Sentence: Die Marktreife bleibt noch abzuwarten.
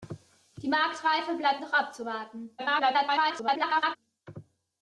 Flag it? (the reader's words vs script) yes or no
yes